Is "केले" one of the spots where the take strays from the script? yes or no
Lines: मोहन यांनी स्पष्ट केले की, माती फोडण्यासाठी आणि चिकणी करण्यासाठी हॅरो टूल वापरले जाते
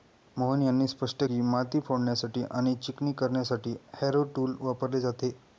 yes